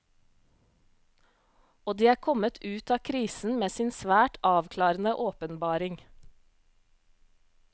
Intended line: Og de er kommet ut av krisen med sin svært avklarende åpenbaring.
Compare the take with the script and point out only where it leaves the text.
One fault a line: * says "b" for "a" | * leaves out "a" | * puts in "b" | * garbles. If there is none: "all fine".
all fine